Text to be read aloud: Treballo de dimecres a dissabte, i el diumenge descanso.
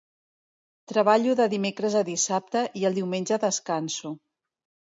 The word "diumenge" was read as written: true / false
true